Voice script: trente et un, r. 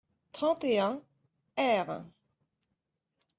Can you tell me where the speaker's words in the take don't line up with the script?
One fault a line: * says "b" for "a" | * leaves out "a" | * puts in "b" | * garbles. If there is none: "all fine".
all fine